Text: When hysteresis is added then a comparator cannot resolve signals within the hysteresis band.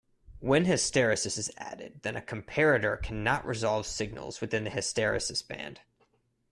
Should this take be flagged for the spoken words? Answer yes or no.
no